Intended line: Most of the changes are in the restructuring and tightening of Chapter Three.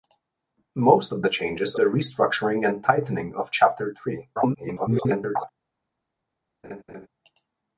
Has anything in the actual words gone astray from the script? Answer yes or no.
yes